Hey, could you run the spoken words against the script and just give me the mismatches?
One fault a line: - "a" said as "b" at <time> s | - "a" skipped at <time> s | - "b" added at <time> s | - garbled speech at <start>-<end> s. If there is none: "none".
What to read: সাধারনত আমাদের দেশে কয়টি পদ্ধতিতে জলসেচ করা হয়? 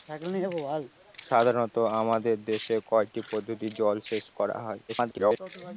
- garbled speech at 4.9-5.4 s